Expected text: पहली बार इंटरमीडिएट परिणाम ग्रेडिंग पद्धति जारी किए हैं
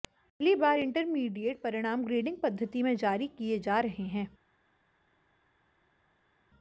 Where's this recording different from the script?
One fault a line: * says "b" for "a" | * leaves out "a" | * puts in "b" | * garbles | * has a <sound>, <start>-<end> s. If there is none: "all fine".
* puts in "में"
* puts in "जा रहे"